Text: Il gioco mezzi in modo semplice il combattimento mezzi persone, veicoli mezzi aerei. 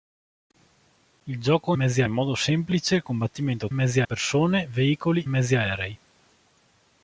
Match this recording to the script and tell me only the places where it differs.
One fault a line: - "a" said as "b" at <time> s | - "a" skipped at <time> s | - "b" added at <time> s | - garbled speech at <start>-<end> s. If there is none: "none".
none